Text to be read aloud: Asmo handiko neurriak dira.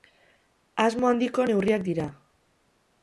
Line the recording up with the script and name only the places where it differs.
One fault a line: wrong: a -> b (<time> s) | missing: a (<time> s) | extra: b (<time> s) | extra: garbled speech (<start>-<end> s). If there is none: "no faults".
no faults